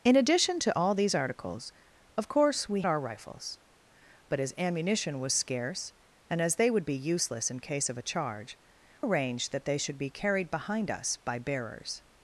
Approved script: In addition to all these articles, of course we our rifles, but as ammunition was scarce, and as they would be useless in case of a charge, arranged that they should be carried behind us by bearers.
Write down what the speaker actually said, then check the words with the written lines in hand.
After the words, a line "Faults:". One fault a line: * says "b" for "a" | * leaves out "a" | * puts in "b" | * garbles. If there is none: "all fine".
In addition to all these articles, of course we our rifles, but as ammunition was scarce, and as they would be useless in case of a charge, arranged that they should be carried behind us by bearers.
Faults:
all fine